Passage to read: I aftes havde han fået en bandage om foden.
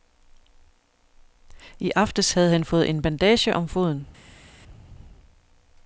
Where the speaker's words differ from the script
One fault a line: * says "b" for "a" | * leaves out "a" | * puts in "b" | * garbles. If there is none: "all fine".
all fine